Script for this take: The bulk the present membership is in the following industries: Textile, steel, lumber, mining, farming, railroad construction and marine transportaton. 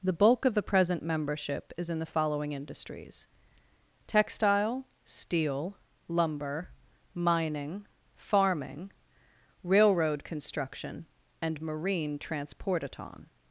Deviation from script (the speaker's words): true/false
true